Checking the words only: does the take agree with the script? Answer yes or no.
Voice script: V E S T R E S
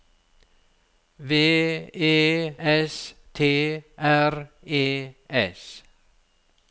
yes